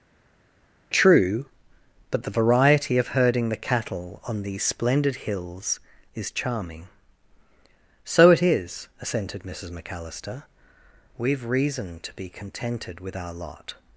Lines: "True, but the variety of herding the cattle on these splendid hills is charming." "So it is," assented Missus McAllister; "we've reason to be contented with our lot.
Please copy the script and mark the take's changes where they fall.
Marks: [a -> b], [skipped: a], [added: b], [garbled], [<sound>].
"True, but the variety of herding the cattle on these splendid hills is charming." "So it is," assented Missus McAllister; "we've reason to be contented with our lot.